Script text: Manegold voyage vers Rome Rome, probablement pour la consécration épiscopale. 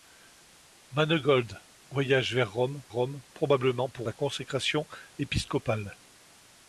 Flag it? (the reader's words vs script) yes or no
no